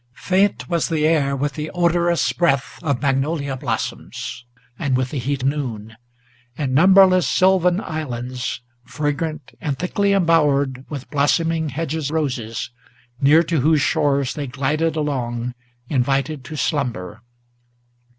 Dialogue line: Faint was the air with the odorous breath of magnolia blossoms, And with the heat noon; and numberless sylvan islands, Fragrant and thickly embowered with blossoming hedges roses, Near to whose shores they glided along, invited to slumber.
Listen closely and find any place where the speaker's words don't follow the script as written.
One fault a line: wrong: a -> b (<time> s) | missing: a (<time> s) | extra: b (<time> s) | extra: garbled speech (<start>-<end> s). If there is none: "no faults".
no faults